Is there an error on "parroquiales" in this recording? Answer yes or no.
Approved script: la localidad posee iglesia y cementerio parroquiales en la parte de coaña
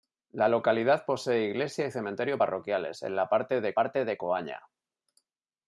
no